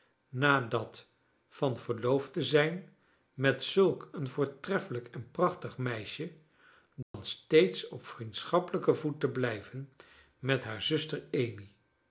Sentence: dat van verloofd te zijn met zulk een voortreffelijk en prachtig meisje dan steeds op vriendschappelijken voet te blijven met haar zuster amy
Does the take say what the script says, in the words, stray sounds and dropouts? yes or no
no